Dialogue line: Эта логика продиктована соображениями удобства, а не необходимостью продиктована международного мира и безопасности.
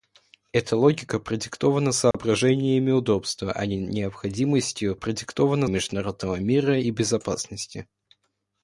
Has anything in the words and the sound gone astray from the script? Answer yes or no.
yes